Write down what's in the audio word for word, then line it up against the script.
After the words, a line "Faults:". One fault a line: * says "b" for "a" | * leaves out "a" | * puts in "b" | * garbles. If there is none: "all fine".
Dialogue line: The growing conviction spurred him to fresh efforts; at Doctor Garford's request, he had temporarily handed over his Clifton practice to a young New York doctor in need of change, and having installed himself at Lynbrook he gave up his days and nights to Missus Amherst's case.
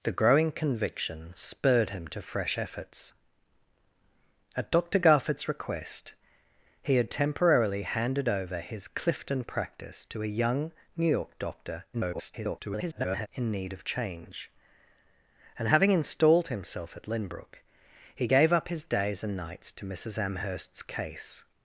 The growing conviction spurred him to fresh efforts; at Doctor Garford's request, he had temporarily handed over his Clifton practice to a young New York doctor [garbled] in need of change, and having installed himself at Lynbrook he gave up his days and nights to Missus Amherst's case.
Faults:
* garbles